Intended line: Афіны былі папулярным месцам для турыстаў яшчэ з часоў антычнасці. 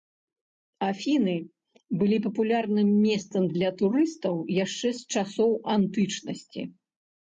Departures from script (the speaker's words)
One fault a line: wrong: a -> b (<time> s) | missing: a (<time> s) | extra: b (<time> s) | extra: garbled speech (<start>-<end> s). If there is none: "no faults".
no faults